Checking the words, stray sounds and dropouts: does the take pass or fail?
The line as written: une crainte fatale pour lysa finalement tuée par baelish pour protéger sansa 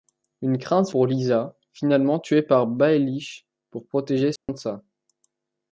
fail